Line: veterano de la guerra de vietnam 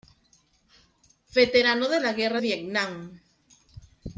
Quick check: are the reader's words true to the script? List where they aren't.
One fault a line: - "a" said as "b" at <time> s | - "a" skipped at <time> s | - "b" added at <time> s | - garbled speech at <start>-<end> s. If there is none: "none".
- "de" skipped at 2.4 s